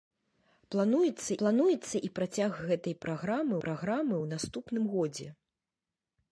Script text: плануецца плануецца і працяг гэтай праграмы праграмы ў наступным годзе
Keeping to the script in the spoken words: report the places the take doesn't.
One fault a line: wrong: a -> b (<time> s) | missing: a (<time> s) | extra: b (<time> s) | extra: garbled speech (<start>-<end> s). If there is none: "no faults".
no faults